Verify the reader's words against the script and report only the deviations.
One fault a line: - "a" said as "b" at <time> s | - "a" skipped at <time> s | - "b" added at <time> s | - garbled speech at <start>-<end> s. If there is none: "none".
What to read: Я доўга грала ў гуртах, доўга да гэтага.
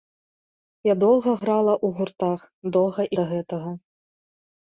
none